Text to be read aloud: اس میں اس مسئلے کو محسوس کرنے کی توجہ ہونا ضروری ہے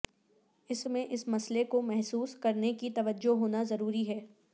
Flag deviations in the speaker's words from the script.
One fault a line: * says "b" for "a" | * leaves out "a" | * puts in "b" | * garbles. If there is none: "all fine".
all fine